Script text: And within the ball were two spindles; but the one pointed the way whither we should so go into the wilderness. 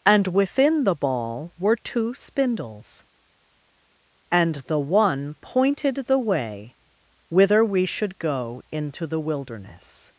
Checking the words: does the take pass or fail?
fail